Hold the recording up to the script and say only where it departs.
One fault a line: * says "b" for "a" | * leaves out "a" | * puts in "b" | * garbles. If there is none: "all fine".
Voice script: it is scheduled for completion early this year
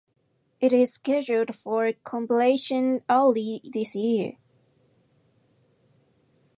all fine